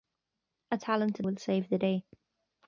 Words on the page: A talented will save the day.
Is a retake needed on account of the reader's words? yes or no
no